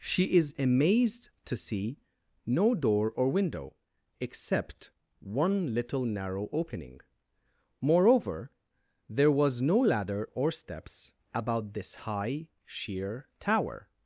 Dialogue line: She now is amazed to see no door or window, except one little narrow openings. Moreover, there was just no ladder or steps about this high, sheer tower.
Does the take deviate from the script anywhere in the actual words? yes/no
yes